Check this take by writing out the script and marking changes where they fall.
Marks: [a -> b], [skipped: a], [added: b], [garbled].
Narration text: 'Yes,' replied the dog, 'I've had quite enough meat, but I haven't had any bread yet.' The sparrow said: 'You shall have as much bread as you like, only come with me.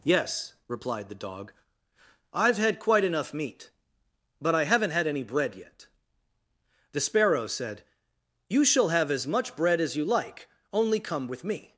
'Yes,' replied the dog, 'I've had quite enough meat, but I haven't had any bread yet.' The sparrow said: 'You shall have as much bread as you like, only come with me.